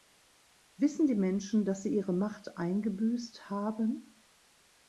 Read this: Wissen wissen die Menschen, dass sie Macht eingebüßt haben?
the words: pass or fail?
fail